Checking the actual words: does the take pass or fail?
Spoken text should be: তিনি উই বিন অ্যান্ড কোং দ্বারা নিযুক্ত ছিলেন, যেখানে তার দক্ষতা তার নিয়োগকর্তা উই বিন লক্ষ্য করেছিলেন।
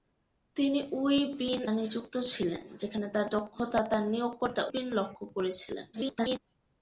fail